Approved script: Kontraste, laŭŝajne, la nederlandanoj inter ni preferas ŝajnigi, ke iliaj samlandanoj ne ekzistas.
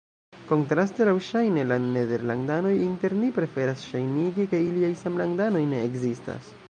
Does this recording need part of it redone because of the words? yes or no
no